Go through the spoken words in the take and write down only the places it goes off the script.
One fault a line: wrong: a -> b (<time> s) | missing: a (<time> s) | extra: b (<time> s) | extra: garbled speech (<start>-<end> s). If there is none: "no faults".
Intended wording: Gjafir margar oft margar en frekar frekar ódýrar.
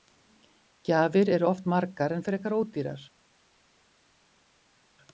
wrong: margar -> eru (1.4 s)
missing: frekar (2.6 s)